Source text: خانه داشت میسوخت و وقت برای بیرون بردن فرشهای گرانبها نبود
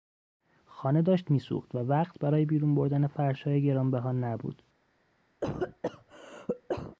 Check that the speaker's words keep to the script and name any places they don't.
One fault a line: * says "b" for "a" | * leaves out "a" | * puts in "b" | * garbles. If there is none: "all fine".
all fine